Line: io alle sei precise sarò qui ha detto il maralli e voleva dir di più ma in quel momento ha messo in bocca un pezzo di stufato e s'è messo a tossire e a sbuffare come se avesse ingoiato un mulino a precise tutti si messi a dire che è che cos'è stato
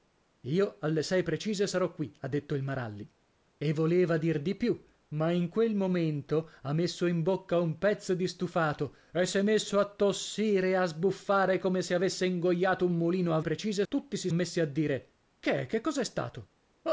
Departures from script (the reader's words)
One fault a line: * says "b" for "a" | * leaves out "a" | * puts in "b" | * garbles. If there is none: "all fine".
all fine